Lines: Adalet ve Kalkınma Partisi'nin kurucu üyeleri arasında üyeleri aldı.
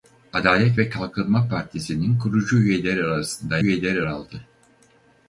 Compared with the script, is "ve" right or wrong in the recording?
right